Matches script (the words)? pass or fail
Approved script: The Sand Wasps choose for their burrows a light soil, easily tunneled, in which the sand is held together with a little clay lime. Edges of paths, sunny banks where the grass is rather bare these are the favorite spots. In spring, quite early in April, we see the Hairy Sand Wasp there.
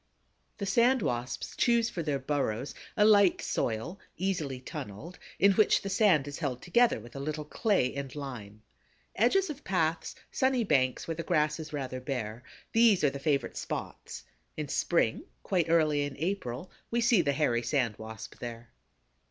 fail